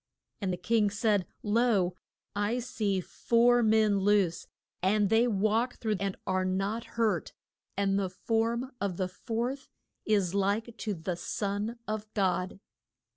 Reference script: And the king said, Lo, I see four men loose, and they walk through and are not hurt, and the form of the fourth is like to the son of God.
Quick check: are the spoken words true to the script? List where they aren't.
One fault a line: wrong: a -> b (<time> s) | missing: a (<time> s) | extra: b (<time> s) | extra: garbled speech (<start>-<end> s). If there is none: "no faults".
no faults